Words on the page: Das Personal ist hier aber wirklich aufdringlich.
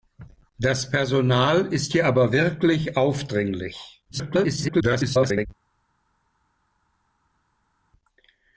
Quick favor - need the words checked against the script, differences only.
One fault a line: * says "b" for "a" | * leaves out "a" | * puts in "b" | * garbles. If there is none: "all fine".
* garbles